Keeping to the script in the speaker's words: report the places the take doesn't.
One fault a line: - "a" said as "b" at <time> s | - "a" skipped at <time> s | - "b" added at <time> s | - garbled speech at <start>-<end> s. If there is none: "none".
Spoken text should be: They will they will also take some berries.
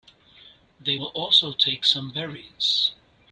- "they will" skipped at 1.1 s